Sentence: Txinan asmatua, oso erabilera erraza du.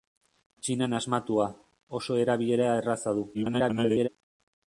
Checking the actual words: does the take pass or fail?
fail